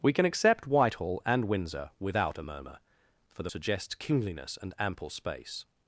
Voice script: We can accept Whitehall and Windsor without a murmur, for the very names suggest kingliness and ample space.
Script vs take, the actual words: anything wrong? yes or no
yes